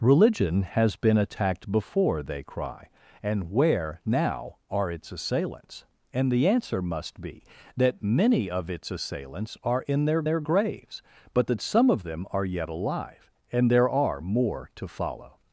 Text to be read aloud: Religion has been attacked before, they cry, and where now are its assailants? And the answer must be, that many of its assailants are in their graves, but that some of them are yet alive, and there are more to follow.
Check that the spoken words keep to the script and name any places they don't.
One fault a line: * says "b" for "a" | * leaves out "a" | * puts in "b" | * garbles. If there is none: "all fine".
* puts in "their"